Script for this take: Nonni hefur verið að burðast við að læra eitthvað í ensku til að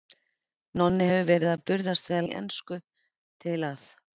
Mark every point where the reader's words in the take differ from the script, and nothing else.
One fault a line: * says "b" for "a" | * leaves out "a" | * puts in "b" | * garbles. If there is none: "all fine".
* leaves out "læra eitthvað"